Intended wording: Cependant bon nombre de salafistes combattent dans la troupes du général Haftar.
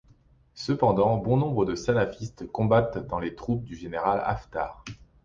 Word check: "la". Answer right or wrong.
wrong